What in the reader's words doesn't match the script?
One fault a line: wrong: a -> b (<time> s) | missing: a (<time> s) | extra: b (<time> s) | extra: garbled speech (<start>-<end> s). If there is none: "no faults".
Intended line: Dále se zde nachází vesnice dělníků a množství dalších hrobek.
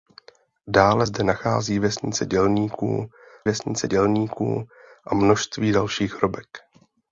missing: se (1.1 s)
extra: vesnice dělníků (3.4 s)